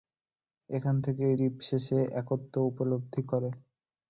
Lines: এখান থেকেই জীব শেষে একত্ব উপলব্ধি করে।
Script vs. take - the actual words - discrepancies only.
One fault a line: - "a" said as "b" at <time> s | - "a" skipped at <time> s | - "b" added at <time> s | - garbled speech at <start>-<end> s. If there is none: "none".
none